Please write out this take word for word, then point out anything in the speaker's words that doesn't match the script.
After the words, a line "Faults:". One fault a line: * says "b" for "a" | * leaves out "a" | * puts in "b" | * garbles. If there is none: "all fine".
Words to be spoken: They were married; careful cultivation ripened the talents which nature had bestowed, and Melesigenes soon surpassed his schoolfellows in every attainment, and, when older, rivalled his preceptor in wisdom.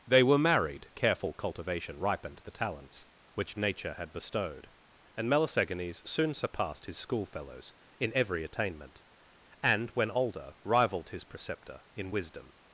They were married; careful cultivation ripened the talents which nature had bestowed, and Melesigenes soon surpassed his schoolfellows in every attainment, and, when older, rivalled his preceptor in wisdom.
Faults:
all fine